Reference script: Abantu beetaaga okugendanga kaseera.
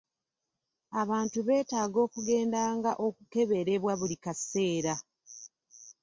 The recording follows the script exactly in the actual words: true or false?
false